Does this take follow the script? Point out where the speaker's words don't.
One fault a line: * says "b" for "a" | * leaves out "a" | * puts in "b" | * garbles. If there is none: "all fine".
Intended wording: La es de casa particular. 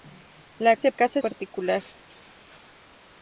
all fine